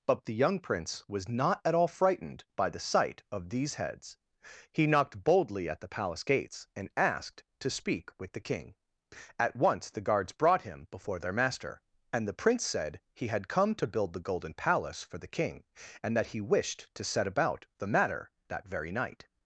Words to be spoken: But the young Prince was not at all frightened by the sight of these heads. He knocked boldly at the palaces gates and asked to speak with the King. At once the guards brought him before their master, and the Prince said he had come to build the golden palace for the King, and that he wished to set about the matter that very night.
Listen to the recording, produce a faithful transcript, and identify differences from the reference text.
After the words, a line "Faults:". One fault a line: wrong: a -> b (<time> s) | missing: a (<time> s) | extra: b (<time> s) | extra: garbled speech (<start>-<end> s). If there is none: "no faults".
But the young Prince was not at all frightened by the sight of these heads. He knocked boldly at the palace gates and asked to speak with the King. At once the guards brought him before their master, and the Prince said he had come to build the golden palace for the King, and that he wished to set about the matter that very night.
Faults:
wrong: palaces -> palace (5.9 s)